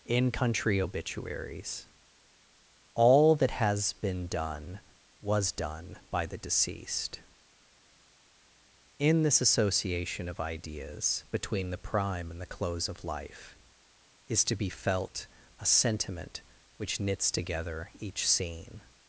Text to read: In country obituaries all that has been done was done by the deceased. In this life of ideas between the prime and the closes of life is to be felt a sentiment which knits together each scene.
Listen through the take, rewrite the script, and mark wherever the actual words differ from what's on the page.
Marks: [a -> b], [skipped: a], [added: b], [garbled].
In country obituaries all that has been done was done by the deceased. In this [life -> association] of ideas between the prime and the [closes -> close] of life is to be felt a sentiment which knits together each scene.